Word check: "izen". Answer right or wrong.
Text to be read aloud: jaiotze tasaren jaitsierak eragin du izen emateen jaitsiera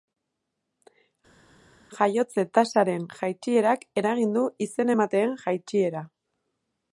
right